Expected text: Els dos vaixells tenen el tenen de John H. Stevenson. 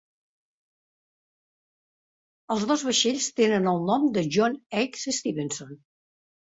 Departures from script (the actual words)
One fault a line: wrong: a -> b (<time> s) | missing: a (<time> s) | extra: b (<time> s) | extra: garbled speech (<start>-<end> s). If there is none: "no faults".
wrong: tenen -> nom (3.9 s)